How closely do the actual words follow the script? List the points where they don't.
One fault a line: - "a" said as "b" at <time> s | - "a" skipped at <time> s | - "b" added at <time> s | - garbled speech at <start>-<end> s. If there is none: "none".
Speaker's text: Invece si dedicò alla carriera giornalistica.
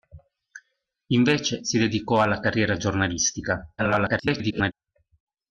- garbled speech at 3.8-4.7 s